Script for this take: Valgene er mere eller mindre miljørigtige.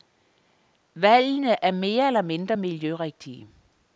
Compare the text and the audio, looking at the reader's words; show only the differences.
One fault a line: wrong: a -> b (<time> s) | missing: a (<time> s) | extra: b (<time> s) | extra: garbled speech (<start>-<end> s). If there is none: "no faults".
no faults